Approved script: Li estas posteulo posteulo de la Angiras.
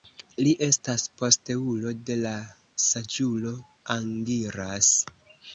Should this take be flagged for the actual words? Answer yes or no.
yes